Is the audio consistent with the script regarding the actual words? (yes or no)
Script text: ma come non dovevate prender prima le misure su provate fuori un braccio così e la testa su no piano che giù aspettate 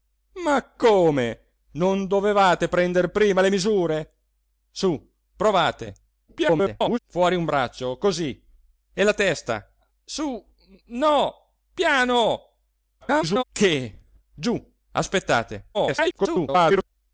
no